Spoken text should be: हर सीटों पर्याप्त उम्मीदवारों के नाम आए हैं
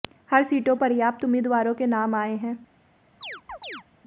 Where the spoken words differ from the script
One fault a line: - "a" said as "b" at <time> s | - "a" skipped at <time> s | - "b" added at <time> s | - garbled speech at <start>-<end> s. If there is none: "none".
none